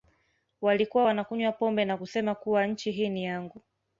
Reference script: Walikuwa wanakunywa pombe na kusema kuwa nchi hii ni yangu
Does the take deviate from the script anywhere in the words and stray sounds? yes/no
no